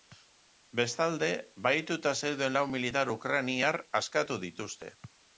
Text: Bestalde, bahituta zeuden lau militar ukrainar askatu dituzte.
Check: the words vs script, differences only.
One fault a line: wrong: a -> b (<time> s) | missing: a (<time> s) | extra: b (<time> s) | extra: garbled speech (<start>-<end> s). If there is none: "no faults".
no faults